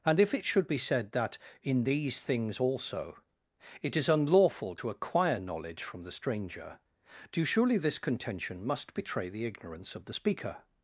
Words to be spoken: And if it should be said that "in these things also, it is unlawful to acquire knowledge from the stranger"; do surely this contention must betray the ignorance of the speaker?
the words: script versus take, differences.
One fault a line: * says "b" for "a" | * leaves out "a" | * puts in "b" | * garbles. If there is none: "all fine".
all fine